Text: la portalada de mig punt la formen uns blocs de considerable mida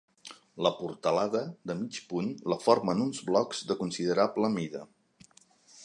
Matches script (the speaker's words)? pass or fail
pass